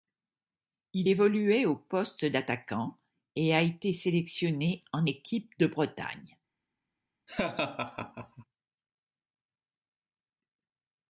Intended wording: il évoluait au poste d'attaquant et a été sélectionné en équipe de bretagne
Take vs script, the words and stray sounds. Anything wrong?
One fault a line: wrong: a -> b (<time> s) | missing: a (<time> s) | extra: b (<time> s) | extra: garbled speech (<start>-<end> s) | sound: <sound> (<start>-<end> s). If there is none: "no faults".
sound: laugh (7.3-8.4 s)